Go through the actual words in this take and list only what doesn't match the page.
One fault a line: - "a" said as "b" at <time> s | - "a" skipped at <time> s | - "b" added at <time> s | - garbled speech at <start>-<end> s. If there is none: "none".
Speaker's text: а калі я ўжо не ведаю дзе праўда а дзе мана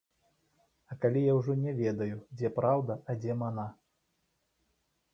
none